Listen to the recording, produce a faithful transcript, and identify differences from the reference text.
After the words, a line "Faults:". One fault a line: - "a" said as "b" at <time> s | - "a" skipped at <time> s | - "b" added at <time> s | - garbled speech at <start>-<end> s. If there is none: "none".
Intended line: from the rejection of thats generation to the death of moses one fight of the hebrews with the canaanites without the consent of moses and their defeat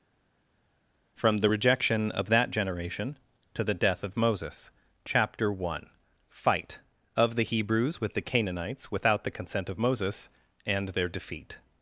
from the rejection of that generation to the death of moses chapter one fight of the hebrews with the canaanites without the consent of moses and their defeat
Faults:
- "thats" said as "that" at 2.3 s
- "chapter" added at 5.0 s